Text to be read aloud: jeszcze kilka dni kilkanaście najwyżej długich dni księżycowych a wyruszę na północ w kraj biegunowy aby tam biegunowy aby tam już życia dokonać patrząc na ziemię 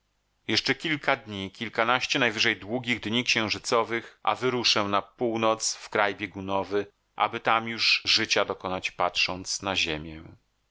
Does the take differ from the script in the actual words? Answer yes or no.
yes